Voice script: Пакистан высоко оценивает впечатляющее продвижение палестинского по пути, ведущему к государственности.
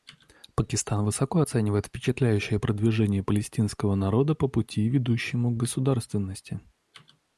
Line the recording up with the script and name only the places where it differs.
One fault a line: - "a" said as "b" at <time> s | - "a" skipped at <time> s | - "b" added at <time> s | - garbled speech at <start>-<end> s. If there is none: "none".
- "народа" added at 4.0 s